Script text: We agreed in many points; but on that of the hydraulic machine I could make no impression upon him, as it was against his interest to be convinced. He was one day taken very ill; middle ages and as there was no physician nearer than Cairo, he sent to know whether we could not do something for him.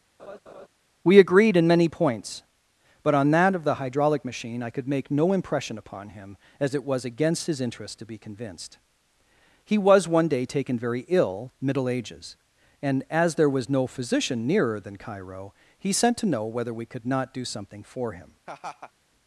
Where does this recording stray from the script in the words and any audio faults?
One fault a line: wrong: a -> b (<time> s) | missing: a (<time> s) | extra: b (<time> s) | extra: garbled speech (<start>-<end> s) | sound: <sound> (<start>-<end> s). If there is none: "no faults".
sound: laugh (0.2-0.7 s)
sound: laugh (18.5-18.9 s)